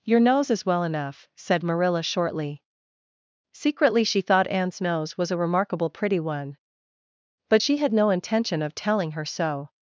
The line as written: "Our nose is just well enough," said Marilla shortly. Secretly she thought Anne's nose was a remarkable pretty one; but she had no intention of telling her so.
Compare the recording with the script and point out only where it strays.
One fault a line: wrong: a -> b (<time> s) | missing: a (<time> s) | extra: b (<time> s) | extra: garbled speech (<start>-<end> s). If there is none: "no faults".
wrong: Our -> Your (0.0 s)
missing: just (0.7 s)